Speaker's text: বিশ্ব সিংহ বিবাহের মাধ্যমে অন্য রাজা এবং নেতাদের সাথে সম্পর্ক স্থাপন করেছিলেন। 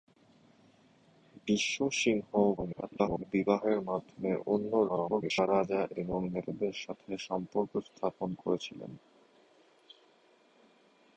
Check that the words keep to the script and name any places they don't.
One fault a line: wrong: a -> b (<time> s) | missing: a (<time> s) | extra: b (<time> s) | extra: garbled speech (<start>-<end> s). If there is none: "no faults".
extra: garbled speech (2.6-3.2 s)
extra: garbled speech (4.9-5.5 s)